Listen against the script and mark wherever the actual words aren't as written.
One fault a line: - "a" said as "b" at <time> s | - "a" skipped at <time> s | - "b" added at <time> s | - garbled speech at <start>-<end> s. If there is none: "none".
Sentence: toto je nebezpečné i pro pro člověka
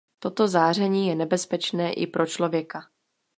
- "záření" added at 0.5 s
- "pro" skipped at 2.2 s